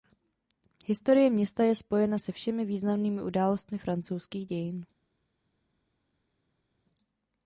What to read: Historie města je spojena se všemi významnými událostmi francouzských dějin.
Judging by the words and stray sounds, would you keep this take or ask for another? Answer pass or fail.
pass